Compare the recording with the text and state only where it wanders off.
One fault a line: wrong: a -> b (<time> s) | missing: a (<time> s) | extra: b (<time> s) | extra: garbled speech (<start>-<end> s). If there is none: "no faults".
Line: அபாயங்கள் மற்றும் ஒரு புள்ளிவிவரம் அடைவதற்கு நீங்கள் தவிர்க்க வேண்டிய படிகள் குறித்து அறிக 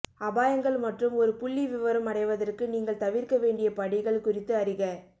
no faults